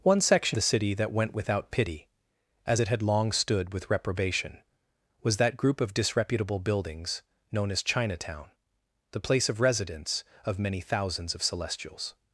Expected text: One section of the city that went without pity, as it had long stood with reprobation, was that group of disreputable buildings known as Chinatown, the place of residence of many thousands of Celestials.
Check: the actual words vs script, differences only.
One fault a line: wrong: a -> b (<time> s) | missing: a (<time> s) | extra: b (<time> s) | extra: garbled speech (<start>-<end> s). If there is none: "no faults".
missing: of (0.6 s)